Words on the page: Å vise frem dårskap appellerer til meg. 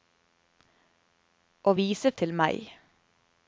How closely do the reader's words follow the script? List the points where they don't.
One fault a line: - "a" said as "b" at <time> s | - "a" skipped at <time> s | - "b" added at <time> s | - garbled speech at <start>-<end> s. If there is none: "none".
- "frem dårskap appellerer" skipped at 2.1 s